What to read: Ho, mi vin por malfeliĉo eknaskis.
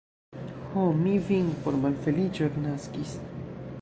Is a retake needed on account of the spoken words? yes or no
no